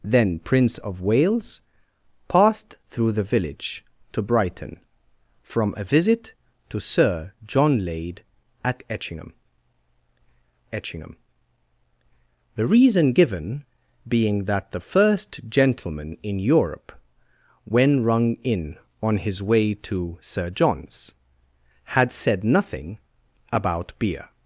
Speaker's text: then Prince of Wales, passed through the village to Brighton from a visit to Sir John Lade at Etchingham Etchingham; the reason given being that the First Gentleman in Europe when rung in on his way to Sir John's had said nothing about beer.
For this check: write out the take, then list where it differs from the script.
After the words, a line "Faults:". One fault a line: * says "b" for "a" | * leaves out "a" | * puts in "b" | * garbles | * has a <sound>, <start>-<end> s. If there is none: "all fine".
then Prince of Wales, passed through the village to Brighton from a visit to Sir John Lade at Etchingham Etchingham; the reason given being that the First Gentleman in Europe when rung in on his way to Sir John's had said nothing about beer.
Faults:
all fine